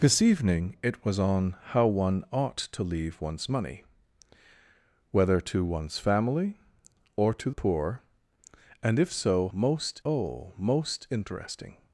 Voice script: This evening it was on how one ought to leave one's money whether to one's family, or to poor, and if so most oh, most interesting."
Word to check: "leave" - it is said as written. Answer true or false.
true